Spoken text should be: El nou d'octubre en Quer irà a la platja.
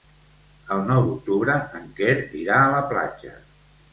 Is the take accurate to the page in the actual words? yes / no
yes